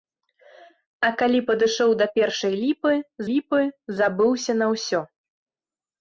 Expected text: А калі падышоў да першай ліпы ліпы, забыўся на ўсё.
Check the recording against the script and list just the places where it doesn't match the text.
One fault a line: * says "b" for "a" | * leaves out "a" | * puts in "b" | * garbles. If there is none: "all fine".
all fine